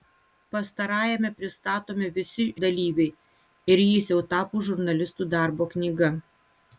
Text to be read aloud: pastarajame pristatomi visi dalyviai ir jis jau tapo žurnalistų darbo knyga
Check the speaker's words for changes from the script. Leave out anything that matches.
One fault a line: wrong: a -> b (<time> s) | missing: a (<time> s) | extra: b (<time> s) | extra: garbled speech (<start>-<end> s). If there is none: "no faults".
no faults